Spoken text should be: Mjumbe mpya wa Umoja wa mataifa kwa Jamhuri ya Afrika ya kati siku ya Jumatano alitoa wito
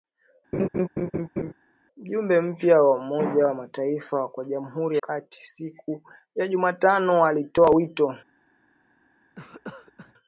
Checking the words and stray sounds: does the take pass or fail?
fail